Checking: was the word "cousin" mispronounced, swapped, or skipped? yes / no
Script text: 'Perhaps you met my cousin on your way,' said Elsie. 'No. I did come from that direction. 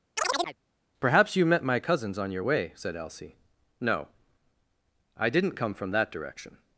yes